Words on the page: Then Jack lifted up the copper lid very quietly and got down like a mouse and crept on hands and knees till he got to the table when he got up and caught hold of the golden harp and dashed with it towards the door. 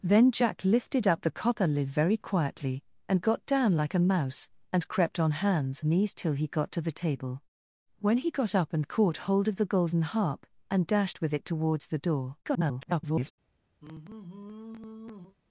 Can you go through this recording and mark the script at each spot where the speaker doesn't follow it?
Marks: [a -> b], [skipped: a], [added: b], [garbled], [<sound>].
Then Jack lifted up the copper lid very quietly and got down like a mouse and crept on hands [skipped: and] knees till he got to the table when he got up and caught hold of the golden harp and dashed with it towards the door. [garbled] [sigh]